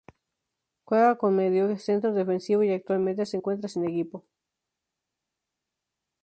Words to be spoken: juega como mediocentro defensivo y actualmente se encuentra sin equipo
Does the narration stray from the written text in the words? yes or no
no